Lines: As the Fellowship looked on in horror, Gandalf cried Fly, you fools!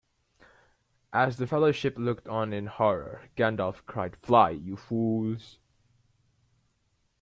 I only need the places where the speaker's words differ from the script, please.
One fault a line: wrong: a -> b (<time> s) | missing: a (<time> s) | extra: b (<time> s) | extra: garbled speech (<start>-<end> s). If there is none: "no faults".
no faults